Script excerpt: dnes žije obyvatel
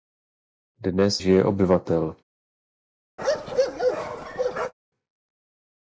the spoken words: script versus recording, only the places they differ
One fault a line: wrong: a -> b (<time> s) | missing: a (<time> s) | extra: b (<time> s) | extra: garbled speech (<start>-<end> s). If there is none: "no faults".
no faults